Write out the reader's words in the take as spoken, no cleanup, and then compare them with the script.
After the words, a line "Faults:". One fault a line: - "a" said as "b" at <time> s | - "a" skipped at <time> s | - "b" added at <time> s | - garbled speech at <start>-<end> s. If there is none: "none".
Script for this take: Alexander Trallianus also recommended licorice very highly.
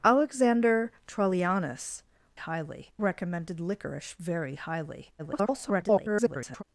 Alexander Trallianus highly recommended licorice very highly. [garbled]
Faults:
- "also" said as "highly" at 2.4 s
- garbled speech at 5.2-6.6 s